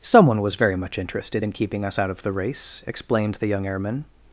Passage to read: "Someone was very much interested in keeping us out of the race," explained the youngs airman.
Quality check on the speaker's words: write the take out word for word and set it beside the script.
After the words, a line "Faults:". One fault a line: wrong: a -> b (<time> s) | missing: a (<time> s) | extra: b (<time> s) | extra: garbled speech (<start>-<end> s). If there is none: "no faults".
"Someone was very much interested in keeping us out of the race," explained the young airman.
Faults:
wrong: youngs -> young (3.5 s)